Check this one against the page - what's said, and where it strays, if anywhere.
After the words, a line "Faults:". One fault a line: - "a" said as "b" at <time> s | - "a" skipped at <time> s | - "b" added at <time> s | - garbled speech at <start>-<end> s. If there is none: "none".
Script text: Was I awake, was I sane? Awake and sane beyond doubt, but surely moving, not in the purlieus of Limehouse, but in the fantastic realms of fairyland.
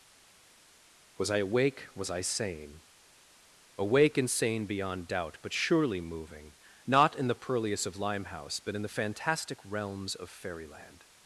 Was I awake, was I sane? Awake and sane beyond doubt, but surely moving, not in the purlieus of Limehouse, but in the fantastic realms of fairyland.
Faults:
none